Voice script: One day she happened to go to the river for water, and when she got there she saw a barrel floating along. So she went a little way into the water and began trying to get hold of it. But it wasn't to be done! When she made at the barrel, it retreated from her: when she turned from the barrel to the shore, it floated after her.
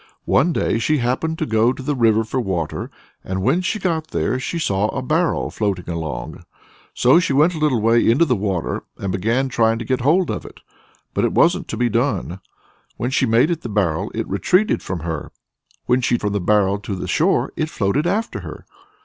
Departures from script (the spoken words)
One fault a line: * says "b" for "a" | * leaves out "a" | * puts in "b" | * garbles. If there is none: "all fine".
* leaves out "turned"